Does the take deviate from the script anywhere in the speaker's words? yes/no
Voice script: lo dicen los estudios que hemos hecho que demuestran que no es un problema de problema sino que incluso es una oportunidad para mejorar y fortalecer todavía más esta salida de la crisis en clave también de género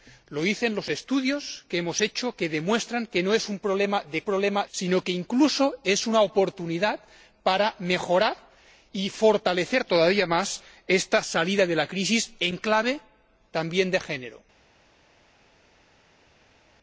no